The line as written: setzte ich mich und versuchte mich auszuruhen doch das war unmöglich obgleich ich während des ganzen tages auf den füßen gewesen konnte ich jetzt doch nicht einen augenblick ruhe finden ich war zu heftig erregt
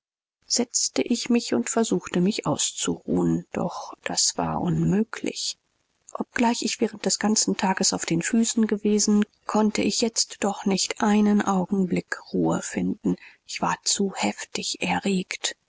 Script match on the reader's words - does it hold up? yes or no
yes